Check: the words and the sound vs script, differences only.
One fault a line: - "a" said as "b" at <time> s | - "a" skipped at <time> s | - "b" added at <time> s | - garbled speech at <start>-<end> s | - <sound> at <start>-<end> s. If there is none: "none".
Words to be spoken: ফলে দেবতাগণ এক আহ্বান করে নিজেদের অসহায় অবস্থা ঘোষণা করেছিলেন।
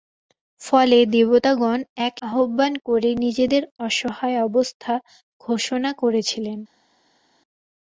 none